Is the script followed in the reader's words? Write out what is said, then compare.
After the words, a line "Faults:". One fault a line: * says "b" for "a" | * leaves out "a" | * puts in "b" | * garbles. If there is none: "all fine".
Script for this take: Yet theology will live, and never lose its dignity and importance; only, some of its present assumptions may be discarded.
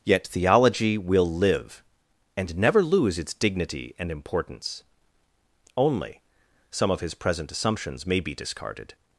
Yet theology will live, and never lose its dignity and importance; only, some of his present assumptions may be discarded.
Faults:
* says "his" for "its"